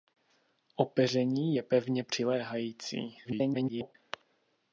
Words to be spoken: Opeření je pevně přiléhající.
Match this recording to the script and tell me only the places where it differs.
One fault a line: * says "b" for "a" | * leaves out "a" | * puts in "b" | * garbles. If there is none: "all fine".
* garbles